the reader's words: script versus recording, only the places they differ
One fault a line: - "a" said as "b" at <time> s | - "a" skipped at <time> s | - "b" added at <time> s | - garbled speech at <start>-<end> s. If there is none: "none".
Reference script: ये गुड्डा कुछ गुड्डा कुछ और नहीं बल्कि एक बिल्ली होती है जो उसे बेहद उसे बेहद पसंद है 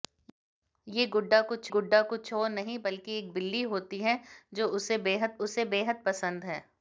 none